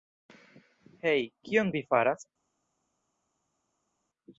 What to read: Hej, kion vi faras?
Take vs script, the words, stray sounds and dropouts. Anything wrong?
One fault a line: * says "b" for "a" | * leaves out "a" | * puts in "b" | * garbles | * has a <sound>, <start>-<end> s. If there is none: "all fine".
all fine